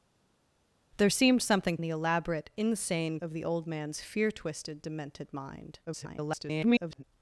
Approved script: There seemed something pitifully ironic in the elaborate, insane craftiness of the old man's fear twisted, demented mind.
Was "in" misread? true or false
true